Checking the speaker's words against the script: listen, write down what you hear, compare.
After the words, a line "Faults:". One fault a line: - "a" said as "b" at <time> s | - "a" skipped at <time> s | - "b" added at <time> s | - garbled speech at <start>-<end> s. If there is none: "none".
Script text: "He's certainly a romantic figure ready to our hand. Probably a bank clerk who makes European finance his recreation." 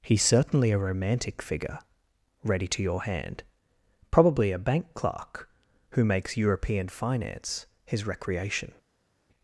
"He's certainly a romantic figure ready to your hand. Probably a bank clerk who makes European finance his recreation."
Faults:
- "our" said as "your" at 2.8 s